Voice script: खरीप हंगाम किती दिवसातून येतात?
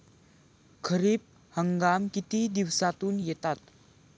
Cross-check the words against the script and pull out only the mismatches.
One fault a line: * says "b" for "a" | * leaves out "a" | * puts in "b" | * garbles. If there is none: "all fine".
all fine